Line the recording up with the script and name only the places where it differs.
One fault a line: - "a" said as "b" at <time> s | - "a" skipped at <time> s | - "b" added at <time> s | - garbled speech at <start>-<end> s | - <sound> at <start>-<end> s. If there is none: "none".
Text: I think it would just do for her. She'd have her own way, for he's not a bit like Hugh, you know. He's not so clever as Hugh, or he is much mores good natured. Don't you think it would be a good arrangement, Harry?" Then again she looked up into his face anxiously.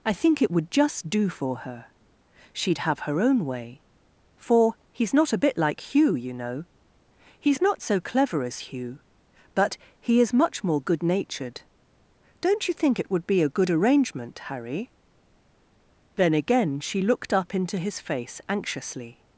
- "or" said as "but" at 9.5 s
- "mores" said as "more" at 10.6 s